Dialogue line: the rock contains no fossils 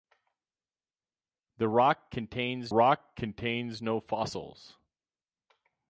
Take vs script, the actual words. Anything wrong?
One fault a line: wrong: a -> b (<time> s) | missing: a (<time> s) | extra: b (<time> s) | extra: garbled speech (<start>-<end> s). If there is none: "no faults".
extra: rock contains (2.7 s)